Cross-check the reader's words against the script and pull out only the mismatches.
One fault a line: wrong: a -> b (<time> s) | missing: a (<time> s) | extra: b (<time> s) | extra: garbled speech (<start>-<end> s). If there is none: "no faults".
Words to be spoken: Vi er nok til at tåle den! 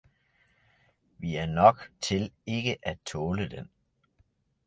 extra: ikke (2.4 s)